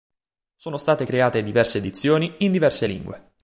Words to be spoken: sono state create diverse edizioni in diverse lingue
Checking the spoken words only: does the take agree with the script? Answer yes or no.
yes